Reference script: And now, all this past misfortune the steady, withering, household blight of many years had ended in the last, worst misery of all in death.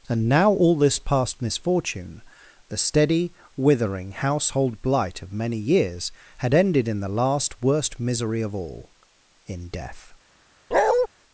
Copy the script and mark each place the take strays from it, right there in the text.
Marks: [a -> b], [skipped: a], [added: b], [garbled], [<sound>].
And now, all this past misfortune the steady, withering, household blight of many years had ended in the last, worst misery of all in death. [bark]